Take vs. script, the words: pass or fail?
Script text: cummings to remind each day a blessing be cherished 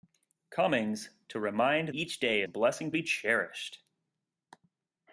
pass